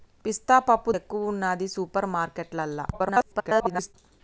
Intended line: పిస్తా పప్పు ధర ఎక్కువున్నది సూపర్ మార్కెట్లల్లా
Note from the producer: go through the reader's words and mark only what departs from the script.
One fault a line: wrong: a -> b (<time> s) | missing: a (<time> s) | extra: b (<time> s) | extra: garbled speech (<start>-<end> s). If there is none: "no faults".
missing: ధర (0.9 s)
extra: garbled speech (2.9-3.9 s)